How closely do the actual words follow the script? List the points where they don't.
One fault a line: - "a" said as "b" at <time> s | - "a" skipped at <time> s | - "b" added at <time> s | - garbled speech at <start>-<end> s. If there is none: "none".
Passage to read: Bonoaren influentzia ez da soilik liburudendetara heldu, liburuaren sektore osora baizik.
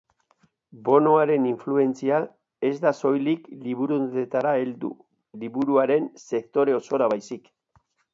none